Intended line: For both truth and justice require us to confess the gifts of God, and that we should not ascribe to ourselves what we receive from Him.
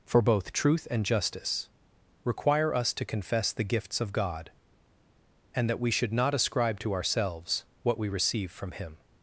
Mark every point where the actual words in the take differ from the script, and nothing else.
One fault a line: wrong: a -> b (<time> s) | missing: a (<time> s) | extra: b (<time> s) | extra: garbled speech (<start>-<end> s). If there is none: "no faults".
no faults